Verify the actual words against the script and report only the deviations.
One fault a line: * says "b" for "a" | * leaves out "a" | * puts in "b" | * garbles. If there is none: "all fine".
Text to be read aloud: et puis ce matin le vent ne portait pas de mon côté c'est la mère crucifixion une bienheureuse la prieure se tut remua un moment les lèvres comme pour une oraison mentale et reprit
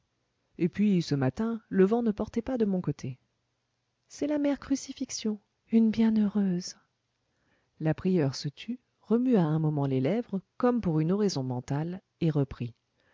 all fine